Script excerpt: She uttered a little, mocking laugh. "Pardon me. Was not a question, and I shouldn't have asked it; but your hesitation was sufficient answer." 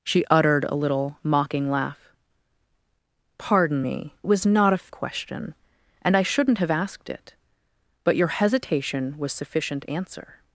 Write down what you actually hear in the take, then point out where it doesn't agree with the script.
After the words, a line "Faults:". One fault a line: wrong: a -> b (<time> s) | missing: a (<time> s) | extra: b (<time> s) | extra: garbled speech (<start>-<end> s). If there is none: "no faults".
She uttered a little, mocking laugh. "Pardon me. Was not a question, and I shouldn't have asked it; but your hesitation was sufficient answer."
Faults:
no faults